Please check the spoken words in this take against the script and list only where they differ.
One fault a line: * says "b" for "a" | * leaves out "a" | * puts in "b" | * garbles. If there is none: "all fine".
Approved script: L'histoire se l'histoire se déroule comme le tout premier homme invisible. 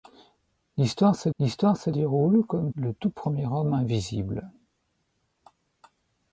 all fine